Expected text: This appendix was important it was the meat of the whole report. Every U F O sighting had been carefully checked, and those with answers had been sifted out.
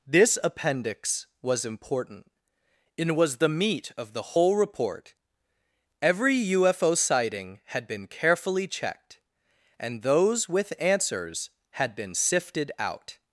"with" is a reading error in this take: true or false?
false